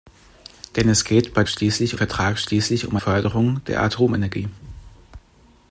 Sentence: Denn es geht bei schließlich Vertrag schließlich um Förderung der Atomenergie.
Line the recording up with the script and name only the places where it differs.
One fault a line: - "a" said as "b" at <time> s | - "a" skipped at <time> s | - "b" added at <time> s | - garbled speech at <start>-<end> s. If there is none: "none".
none